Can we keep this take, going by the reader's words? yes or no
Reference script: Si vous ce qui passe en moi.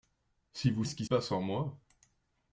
yes